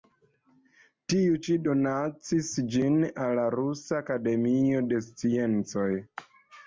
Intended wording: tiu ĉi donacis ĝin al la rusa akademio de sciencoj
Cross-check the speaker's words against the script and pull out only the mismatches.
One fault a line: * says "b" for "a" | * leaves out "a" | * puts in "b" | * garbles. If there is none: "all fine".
all fine